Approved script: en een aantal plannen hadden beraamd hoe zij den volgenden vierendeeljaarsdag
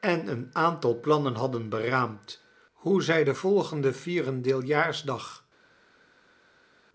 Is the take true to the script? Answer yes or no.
yes